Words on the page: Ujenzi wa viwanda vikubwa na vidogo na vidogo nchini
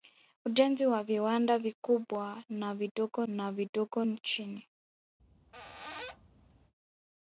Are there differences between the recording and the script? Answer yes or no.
no